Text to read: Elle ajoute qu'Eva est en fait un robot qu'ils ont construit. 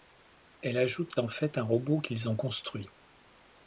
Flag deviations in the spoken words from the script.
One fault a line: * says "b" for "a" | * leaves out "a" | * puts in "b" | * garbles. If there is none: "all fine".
* leaves out "qu'Eva est"